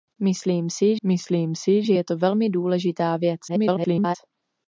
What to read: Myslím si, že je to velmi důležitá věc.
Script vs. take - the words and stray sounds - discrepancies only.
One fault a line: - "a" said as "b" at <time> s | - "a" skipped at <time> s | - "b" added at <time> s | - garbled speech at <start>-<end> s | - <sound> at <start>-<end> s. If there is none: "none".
- "myslím si" added at 1.0 s
- garbled speech at 3.5-4.2 s